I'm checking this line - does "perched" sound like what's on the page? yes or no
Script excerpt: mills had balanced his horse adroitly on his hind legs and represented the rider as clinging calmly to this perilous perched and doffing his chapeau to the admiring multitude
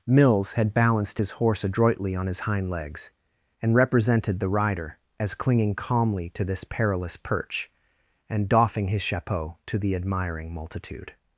no